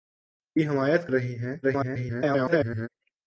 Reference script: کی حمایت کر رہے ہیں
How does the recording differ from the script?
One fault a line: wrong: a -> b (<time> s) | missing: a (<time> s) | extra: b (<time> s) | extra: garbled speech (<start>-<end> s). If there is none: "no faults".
missing: کر (1.1 s)
extra: garbled speech (1.6-2.9 s)